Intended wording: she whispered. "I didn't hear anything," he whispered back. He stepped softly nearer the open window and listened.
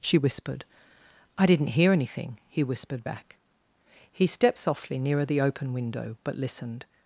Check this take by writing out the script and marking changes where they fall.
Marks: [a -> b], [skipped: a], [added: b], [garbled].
she whispered. "I didn't hear anything," he whispered back. He stepped softly nearer the open window [and -> but] listened.